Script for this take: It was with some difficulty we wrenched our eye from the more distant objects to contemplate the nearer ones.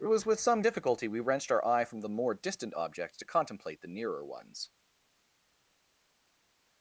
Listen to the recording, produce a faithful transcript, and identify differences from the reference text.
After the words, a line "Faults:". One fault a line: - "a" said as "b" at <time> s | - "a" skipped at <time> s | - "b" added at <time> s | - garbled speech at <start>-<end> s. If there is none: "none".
It was with some difficulty we wrenched our eye from the more distant objects to contemplate the nearer ones.
Faults:
none